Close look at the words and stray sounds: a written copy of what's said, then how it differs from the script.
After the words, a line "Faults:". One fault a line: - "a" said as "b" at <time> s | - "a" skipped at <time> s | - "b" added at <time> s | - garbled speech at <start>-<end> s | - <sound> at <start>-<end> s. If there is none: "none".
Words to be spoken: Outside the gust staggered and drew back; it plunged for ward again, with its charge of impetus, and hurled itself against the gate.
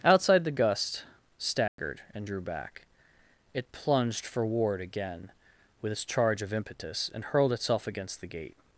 Outside the gust staggered and drew back; it plunged for ward again, with its charge of impetus, and hurled itself against the gate.
Faults:
- dropout at 1.7-1.8 s